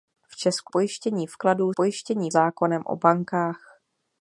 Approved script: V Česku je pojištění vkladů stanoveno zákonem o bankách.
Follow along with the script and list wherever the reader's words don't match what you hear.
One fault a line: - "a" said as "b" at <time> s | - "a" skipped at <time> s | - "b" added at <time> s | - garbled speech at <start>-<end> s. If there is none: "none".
- "je" skipped at 0.7 s
- "stanoveno" said as "pojištění" at 1.7 s